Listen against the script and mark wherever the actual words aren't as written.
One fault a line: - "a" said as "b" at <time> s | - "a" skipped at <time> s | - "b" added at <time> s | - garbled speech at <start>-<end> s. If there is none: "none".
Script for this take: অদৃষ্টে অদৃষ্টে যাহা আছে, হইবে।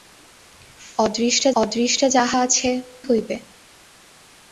none